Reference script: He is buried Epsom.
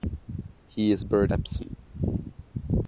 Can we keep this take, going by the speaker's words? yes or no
yes